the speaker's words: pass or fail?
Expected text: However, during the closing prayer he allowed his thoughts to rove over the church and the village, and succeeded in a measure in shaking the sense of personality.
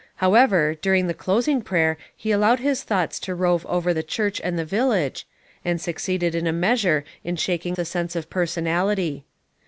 pass